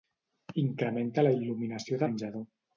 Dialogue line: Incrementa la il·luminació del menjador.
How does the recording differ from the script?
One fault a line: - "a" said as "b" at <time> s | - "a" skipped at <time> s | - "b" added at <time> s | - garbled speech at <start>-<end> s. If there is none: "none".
- "del" skipped at 2.0 s